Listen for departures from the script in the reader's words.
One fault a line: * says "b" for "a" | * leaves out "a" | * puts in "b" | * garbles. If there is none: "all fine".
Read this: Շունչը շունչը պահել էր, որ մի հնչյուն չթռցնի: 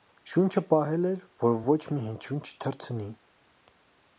* leaves out "շունչը"
* puts in "ոչ"